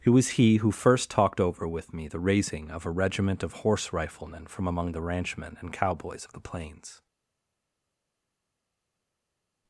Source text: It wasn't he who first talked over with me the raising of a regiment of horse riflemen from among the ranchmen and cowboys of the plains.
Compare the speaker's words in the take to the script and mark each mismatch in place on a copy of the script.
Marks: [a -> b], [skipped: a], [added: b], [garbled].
It [wasn't -> was] he who first talked over with me the raising of a regiment of horse riflemen from among the ranchmen and cowboys of the plains.